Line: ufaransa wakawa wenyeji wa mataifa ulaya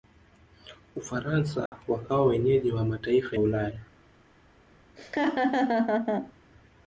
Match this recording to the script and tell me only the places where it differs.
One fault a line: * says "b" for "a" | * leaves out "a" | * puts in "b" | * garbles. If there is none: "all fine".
all fine